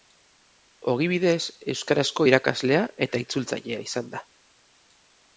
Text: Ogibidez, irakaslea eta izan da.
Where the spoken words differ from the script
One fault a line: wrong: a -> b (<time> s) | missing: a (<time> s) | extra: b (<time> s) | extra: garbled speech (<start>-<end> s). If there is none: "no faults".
extra: euskarazko (1.7 s)
extra: itzultzailea (3.2 s)